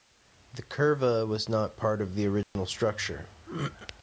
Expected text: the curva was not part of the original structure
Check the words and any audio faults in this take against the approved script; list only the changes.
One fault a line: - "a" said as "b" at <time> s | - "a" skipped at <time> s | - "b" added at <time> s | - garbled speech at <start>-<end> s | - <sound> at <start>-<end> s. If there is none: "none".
- dropout at 2.4-2.6 s